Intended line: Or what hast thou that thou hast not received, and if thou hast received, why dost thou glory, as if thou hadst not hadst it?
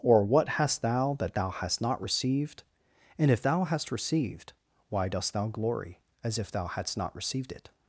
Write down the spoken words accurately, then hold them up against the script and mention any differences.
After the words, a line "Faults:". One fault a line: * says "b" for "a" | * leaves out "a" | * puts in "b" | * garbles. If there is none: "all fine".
Or what hast thou that thou hast not received, and if thou hast received, why dost thou glory, as if thou hadst not received it?
Faults:
* says "received" for "hadst"